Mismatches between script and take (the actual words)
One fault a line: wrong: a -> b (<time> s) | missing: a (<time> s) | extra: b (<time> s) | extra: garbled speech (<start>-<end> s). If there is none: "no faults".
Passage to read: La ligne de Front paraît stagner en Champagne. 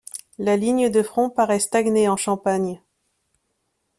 no faults